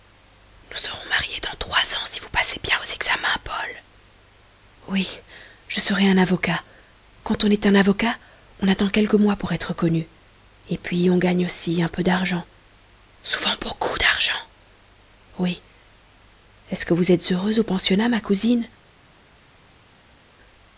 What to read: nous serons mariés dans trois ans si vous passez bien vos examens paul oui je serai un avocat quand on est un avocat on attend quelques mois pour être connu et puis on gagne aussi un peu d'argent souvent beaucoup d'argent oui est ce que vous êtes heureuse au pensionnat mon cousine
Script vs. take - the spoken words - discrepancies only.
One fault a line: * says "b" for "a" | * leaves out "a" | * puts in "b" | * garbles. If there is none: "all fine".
* says "ma" for "mon"